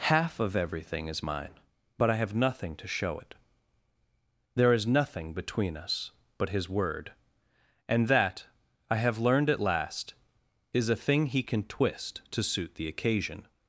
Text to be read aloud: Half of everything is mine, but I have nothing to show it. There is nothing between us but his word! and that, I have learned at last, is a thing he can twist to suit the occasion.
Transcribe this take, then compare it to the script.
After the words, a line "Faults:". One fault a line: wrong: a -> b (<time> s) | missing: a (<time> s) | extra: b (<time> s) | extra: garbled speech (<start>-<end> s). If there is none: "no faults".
Half of everything is mine, but I have nothing to show it. There is nothing between us but his word! and that, I have learned at last, is a thing he can twist to suit the occasion.
Faults:
no faults